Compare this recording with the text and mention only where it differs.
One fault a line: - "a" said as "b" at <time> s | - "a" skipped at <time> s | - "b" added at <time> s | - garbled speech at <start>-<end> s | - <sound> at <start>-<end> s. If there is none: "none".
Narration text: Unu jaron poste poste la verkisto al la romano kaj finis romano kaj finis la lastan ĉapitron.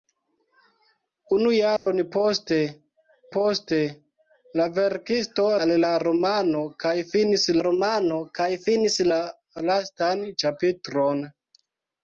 - dropout at 1.8-1.9 s